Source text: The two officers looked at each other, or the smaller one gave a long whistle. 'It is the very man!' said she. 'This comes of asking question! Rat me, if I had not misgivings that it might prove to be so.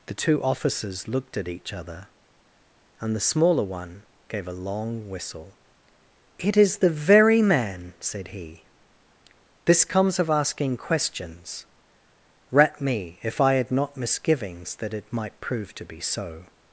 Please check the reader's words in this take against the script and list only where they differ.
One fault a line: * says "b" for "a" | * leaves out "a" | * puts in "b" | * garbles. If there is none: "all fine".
* says "and" for "or"
* says "he" for "she"
* says "questions" for "question"